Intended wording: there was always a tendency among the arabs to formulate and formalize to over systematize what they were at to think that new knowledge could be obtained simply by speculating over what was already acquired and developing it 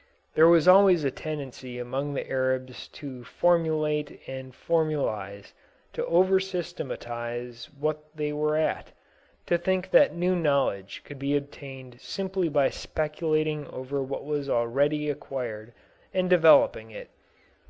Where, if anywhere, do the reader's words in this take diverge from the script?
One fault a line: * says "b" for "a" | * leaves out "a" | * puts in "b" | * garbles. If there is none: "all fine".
all fine